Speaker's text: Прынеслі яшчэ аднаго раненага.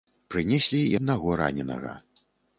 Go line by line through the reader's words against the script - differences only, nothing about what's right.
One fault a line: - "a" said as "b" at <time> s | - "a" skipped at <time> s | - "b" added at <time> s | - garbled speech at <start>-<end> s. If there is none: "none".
- "яшчэ" skipped at 0.8 s